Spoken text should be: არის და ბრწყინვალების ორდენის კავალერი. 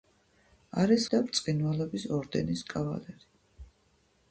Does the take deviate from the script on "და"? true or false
false